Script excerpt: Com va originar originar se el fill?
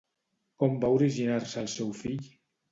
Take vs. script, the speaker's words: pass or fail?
fail